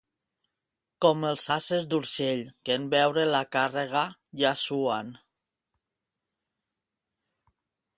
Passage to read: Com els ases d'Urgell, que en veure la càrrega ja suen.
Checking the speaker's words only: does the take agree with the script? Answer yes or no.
yes